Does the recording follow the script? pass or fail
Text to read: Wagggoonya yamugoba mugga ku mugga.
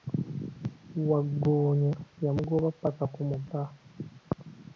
fail